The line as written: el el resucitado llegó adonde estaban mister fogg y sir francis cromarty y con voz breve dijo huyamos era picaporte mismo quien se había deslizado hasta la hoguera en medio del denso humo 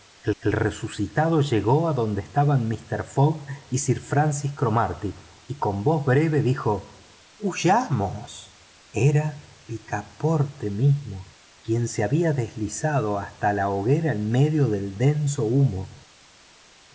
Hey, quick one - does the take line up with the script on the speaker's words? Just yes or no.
yes